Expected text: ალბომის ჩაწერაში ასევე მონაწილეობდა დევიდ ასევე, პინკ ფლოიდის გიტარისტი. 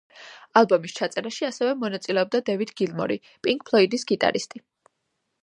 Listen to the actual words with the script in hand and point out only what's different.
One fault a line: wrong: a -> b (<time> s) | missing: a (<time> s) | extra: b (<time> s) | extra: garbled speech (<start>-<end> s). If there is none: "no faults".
wrong: ასევე -> გილმორი (2.8 s)